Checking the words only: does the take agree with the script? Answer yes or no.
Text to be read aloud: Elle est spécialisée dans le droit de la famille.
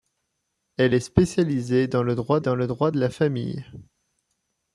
no